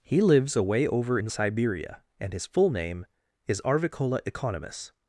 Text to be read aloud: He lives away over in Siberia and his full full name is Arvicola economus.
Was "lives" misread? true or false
false